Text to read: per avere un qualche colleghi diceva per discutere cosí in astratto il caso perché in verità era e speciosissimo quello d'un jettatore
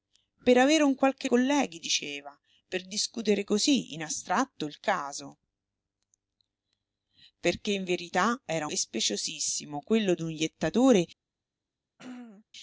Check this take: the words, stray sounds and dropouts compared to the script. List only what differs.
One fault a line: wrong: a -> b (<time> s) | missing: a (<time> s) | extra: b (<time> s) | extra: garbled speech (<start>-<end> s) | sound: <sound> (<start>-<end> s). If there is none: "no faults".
sound: throat clearing (12.0-12.4 s)